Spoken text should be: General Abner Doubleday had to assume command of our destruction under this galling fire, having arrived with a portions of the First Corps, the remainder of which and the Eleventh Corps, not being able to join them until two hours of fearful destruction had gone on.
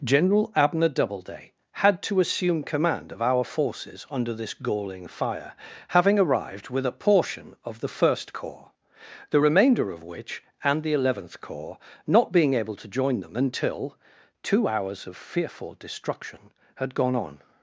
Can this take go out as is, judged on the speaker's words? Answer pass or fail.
fail